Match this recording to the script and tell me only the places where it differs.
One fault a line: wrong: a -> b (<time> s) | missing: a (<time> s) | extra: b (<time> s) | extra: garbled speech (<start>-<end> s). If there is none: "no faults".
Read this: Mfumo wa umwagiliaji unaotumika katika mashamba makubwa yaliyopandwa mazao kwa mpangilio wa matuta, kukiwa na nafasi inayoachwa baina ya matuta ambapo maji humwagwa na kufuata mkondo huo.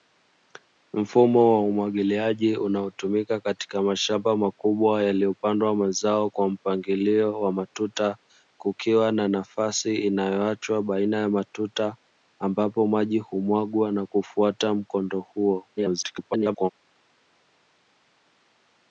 extra: garbled speech (15.8-16.7 s)